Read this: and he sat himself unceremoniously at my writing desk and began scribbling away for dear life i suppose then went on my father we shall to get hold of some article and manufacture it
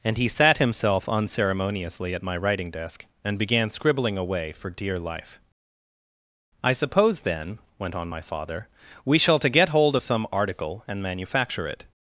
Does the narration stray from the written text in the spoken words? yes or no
no